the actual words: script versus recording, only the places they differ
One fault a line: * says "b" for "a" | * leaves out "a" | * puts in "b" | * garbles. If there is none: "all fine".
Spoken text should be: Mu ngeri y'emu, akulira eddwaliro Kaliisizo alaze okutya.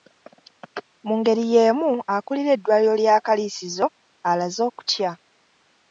* puts in "lya"